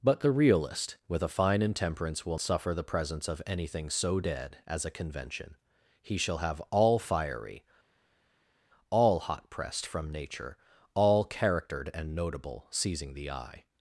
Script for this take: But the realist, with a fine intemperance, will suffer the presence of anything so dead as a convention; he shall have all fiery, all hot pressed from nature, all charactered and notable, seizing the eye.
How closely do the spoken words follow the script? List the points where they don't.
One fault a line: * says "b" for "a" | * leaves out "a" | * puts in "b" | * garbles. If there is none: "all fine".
all fine